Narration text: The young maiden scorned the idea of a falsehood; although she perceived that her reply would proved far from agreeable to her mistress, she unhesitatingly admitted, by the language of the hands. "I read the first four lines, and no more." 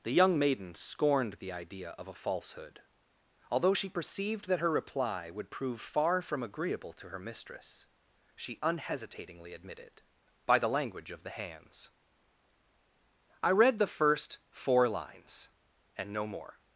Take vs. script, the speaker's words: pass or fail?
fail